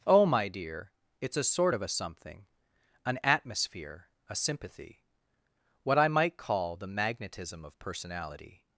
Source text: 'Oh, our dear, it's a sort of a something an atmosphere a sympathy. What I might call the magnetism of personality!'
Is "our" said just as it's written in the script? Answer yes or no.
no